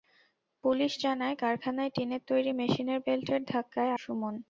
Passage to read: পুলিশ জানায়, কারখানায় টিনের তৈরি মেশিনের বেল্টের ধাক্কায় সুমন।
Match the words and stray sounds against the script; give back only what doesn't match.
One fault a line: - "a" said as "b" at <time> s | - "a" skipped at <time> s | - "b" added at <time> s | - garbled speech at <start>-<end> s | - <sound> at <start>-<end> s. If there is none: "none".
none